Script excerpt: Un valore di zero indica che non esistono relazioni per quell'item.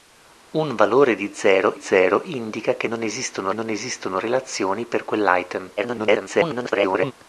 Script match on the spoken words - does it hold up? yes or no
no